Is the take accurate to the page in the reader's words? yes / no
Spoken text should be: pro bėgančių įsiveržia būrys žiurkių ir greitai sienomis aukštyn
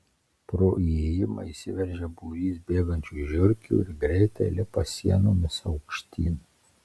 no